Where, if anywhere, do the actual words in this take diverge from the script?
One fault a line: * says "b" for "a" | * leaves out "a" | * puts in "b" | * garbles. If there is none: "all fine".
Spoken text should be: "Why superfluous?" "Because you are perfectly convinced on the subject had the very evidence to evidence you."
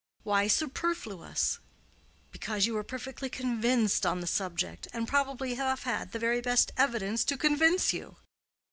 * puts in "and probably have"
* puts in "best"
* says "convince" for "evidence"